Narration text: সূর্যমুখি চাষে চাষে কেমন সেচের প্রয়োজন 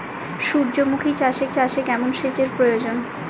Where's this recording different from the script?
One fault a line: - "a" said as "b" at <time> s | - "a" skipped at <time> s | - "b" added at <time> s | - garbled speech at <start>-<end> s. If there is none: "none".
none